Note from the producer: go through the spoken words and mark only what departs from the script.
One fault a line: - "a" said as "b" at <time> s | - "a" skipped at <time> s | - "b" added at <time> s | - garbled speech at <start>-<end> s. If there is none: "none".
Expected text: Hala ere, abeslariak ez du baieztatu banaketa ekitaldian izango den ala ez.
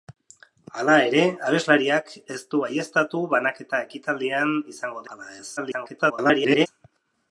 - "den" skipped at 5.1 s
- garbled speech at 5.6-6.7 s